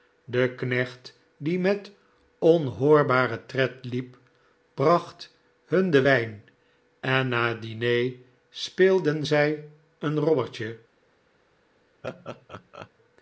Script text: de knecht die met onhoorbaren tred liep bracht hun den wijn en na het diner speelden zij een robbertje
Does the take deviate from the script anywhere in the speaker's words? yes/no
no